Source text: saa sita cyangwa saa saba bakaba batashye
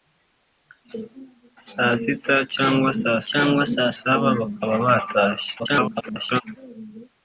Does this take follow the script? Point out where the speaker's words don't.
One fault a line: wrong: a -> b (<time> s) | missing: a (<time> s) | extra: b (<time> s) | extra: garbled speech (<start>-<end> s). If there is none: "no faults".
extra: cyangwa saa (3.3 s)
extra: garbled speech (5.6-6.4 s)